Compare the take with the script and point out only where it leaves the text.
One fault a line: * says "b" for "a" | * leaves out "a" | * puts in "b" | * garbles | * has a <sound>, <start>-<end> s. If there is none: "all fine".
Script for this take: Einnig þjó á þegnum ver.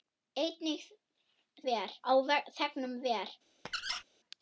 * says "ver" for "þjó"
* has a squeak, 3.7-4.0 s